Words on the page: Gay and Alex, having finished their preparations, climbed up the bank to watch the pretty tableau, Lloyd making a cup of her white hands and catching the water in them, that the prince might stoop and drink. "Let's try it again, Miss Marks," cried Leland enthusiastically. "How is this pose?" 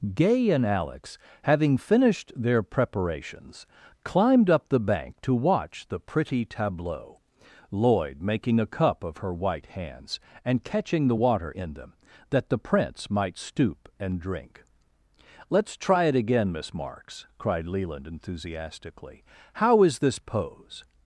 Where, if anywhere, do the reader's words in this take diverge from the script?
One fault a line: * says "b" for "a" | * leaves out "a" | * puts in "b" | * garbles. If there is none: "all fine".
all fine